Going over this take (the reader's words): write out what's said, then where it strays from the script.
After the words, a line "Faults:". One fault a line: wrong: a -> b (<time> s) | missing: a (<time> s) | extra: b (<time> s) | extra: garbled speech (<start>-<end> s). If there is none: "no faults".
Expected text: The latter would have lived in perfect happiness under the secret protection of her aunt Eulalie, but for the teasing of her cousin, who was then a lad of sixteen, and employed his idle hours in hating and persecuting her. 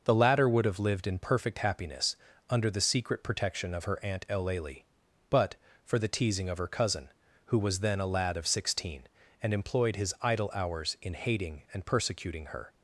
The latter would have lived in perfect happiness under the secret protection of her aunt Eulalie, but for the teasing of her cousin, who was then a lad of sixteen, and employed his idle hours in hating and persecuting her.
Faults:
no faults